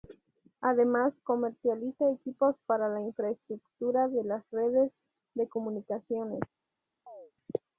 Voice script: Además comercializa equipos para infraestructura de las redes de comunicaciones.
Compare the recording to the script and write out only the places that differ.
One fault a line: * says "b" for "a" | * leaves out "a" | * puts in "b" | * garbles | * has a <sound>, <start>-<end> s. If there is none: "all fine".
* puts in "la"
* has a chirp, 7.1-7.3 s